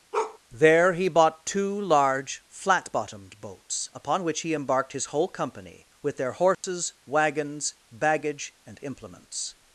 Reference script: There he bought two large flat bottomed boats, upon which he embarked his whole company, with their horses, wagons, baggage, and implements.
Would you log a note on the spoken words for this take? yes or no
no